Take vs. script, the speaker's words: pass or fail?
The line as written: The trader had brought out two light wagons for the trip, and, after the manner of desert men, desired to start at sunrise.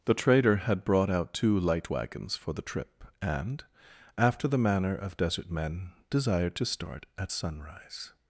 pass